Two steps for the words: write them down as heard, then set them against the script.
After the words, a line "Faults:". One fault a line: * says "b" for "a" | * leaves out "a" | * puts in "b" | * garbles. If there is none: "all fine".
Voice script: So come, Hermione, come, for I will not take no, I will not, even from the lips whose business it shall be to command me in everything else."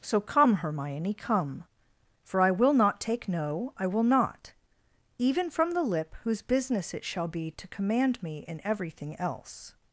So come, Hermione, come, for I will not take no, I will not, even from the lip whose business it shall be to command me in everything else."
Faults:
* says "lip" for "lips"